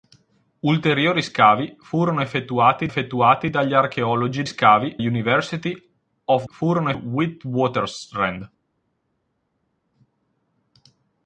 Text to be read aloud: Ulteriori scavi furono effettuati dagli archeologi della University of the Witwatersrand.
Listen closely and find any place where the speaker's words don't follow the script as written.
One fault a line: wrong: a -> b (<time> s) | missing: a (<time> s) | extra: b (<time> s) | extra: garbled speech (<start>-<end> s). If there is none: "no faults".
extra: effettuati (2.9 s)
wrong: della -> scavi (4.4 s)
wrong: the -> furono (6.5 s)